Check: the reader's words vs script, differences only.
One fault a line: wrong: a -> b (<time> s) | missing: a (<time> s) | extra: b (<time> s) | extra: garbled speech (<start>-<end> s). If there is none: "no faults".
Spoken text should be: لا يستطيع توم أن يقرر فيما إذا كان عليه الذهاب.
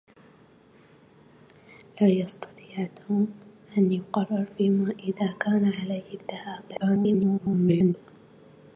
extra: garbled speech (6.7-7.9 s)